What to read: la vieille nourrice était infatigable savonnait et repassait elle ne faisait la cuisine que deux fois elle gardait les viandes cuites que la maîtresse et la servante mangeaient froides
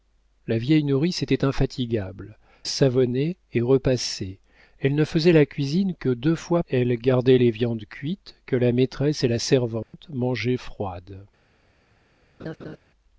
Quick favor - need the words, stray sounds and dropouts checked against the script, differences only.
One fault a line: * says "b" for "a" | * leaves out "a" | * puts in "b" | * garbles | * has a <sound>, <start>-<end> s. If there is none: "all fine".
* has a dropout, 9.8-9.9 s
* has a laugh, 12.4-12.8 s